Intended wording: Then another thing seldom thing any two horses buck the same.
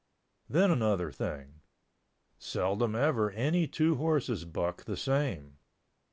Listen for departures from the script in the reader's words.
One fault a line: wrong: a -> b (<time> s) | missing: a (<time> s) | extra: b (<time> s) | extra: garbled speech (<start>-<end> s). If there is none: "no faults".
wrong: thing -> ever (2.9 s)